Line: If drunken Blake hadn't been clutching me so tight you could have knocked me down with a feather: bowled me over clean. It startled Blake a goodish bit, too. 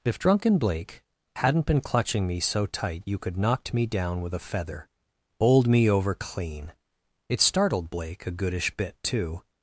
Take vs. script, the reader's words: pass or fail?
fail